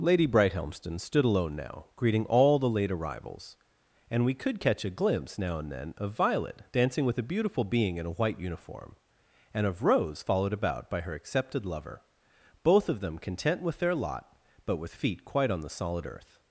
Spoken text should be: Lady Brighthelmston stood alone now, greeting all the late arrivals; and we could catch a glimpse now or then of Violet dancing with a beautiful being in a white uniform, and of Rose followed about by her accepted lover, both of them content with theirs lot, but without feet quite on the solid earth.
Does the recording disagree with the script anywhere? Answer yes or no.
yes